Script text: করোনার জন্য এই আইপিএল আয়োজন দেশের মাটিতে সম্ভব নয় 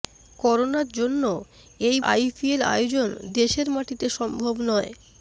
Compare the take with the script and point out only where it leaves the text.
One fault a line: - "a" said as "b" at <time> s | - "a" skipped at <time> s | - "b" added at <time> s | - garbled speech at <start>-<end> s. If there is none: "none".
none